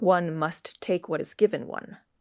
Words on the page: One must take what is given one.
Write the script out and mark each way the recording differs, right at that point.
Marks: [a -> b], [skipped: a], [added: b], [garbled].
One must take what is given one.